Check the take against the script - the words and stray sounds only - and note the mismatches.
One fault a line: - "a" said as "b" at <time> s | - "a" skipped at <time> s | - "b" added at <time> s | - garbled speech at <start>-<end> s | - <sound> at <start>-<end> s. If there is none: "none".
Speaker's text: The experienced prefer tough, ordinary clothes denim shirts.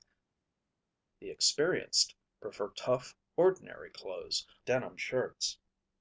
none